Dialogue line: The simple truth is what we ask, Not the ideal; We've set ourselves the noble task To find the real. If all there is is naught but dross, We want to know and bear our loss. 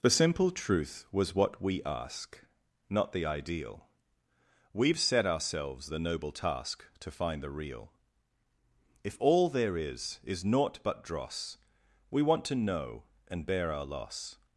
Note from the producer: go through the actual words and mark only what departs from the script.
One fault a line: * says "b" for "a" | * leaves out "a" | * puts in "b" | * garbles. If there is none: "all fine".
* says "was" for "is"